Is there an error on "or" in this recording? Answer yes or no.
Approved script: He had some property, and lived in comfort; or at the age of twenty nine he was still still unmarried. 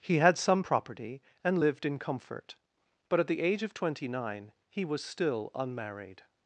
yes